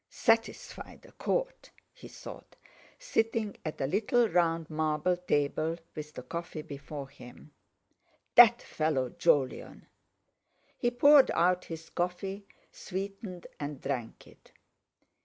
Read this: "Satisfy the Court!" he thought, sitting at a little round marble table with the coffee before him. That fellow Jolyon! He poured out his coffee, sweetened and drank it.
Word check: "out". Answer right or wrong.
right